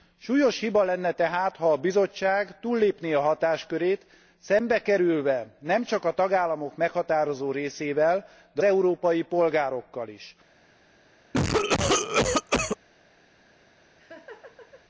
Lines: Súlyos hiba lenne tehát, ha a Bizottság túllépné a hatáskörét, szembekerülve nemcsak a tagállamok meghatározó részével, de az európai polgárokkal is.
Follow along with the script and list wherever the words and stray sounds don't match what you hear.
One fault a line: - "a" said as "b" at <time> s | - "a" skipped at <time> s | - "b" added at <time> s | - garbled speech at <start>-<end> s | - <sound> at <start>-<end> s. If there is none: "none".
- "az" skipped at 8.6 s
- cough at 11.3-12.8 s
- laugh at 13.8-14.8 s